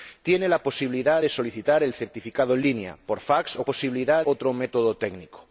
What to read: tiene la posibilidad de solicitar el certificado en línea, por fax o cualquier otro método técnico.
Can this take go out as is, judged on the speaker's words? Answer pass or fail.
fail